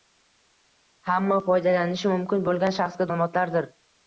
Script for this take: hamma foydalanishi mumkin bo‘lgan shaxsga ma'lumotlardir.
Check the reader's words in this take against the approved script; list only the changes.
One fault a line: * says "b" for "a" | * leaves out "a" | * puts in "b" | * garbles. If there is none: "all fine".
all fine